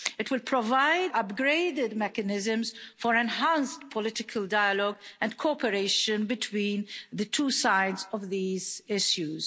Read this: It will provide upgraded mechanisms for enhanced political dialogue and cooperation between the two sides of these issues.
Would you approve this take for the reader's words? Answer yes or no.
yes